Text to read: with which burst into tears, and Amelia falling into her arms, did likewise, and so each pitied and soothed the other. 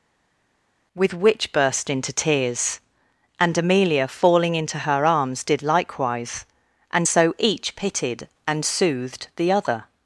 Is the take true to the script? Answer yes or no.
yes